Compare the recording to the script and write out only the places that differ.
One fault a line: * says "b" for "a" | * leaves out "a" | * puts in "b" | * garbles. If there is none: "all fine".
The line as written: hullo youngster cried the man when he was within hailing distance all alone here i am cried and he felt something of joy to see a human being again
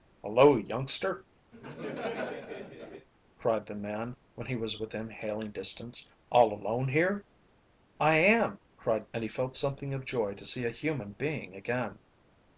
all fine